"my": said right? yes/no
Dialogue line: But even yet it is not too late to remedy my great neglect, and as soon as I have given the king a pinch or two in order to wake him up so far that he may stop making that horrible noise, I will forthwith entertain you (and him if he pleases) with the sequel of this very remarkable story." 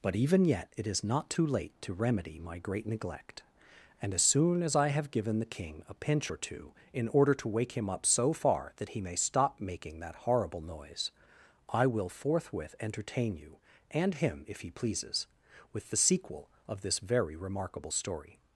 yes